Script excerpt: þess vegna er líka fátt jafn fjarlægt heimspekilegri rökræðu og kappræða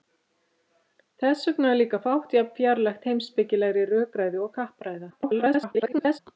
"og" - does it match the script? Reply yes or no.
yes